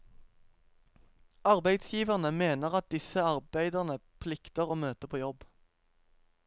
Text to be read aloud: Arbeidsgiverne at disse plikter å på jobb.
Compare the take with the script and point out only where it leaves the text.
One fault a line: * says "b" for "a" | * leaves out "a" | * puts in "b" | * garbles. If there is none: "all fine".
* puts in "mener"
* puts in "arbeiderne"
* puts in "møte"